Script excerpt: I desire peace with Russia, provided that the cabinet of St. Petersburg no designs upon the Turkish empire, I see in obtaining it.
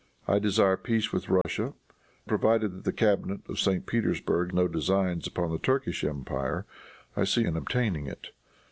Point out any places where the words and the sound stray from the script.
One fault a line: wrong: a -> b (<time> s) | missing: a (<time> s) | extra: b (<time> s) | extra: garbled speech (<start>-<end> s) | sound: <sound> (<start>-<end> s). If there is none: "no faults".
sound: dropout (1.4-1.4 s)